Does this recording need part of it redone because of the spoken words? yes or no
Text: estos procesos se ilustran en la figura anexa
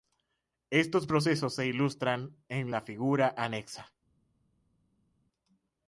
no